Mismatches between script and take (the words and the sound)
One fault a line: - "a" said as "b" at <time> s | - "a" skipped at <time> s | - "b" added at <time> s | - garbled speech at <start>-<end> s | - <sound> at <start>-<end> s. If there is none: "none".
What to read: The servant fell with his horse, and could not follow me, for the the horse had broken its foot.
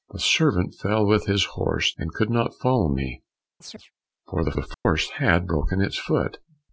- chirp at 3.6-3.9 s
- dropout at 4.7-4.9 s